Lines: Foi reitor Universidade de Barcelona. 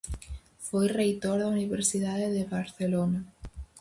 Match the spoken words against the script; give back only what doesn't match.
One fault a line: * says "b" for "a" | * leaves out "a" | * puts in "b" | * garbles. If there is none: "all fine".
* puts in "da"